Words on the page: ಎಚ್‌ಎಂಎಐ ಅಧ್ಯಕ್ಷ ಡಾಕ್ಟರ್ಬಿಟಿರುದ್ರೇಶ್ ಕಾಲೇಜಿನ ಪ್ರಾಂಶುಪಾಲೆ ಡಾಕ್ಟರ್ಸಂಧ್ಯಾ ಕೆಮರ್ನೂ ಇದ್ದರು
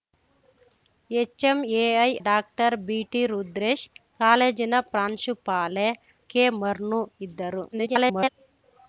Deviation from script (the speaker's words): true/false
true